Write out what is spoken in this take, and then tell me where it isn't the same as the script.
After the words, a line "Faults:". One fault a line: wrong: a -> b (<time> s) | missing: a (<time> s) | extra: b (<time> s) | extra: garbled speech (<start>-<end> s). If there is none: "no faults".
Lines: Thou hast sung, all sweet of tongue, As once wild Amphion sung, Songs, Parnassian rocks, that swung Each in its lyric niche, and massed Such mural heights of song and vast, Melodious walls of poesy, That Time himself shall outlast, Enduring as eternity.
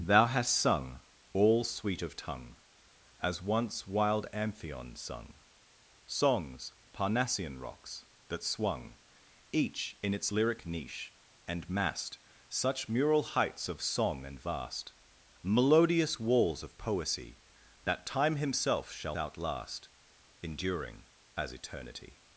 Thou hast sung, all sweet of tongue, As once wild Amphion sung, Songs, Parnassian rocks, that swung Each in its lyric niche, and massed Such mural heights of song and vast, Melodious walls of poesy, That Time himself shall outlast, Enduring as eternity.
Faults:
no faults